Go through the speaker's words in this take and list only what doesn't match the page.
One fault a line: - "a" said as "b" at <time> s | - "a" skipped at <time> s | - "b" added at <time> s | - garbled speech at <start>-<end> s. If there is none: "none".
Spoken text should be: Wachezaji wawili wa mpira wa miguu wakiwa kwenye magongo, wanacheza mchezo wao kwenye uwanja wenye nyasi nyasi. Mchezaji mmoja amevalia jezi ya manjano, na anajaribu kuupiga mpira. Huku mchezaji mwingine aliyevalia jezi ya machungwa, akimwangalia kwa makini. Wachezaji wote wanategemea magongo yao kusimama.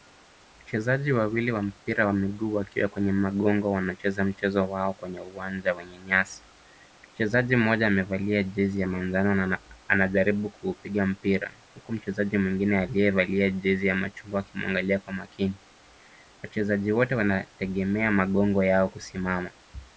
- "nyasi" skipped at 6.4 s